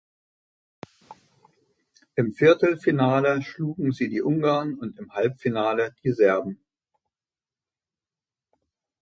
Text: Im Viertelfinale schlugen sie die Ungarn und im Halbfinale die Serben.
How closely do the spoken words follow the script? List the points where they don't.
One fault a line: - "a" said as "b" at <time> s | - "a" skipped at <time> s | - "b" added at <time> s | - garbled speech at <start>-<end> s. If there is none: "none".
none